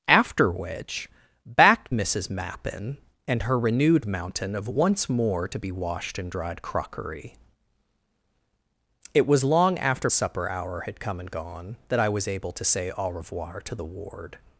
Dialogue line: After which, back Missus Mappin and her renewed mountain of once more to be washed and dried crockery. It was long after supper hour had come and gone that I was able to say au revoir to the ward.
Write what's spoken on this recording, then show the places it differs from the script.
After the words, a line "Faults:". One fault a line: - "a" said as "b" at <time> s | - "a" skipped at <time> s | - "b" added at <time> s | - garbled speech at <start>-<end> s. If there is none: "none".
After which, back Missus Mappin and her renewed mountain of once more to be washed and dried crockery. It was long after supper hour had come and gone that I was able to say au revoir to the ward.
Faults:
none